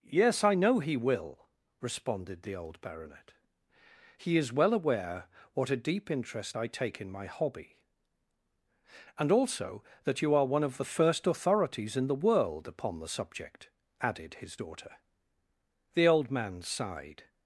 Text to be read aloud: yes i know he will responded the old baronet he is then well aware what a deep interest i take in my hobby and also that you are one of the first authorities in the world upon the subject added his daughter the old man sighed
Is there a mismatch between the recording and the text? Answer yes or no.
yes